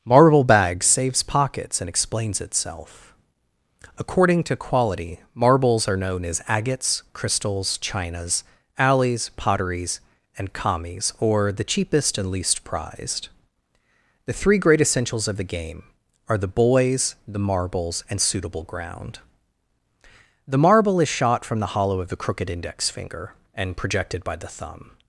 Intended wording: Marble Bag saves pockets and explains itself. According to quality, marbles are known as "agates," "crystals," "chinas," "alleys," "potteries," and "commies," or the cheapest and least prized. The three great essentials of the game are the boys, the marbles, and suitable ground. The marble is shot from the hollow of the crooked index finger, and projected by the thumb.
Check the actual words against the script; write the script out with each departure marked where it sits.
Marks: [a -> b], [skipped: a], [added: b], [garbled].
Marble Bag saves pockets and explains itself. According to quality, marbles are known as "agates," "crystals," "chinas," "alleys," "potteries," and "commies," or the cheapest and least prized. The three great essentials of the game are the boys, the marbles, and suitable ground. The marble is shot from the hollow of the crooked index finger, and projected by the thumb.